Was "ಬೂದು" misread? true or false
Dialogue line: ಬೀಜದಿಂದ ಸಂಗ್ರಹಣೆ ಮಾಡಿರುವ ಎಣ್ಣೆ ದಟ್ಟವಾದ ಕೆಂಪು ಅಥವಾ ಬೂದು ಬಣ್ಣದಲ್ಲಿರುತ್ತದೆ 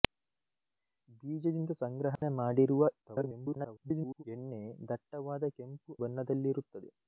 true